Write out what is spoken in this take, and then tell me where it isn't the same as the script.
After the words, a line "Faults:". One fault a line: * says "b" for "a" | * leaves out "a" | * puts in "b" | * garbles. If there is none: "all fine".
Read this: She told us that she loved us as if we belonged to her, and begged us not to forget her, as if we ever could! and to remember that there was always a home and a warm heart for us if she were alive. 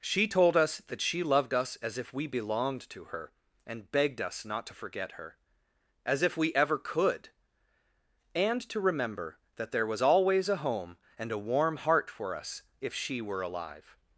She told us that she loved us as if we belonged to her, and begged us not to forget her, as if we ever could! and to remember that there was always a home and a warm heart for us if she were alive.
Faults:
all fine